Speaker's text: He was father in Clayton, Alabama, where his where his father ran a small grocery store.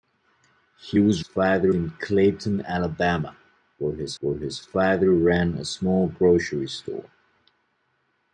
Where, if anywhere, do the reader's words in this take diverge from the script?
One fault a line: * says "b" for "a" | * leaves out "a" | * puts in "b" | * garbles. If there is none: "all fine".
all fine